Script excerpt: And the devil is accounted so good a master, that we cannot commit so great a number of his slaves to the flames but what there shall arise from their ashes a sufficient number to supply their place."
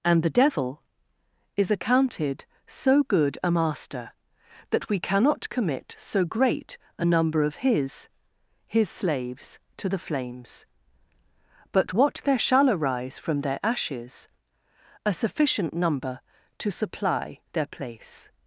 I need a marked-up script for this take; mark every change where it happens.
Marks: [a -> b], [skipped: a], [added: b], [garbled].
And the devil is accounted so good a master, that we cannot commit so great a number of his [added: his] slaves to the flames but what there shall arise from their ashes a sufficient number to supply their place."